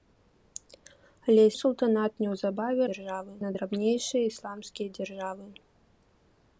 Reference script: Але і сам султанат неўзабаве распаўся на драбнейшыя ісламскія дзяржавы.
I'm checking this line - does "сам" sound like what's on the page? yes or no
no